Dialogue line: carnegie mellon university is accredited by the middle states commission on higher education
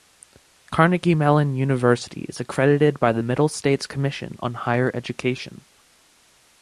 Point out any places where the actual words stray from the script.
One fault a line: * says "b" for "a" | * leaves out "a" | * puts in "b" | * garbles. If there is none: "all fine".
all fine